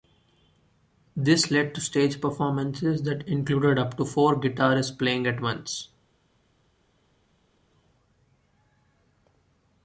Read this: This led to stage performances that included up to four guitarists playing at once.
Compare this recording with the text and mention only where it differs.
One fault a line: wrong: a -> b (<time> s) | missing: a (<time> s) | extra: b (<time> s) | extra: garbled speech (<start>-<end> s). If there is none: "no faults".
no faults